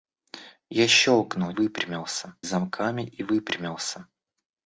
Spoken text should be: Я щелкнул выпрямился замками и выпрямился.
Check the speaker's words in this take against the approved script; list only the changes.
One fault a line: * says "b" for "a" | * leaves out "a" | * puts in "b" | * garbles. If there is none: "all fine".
all fine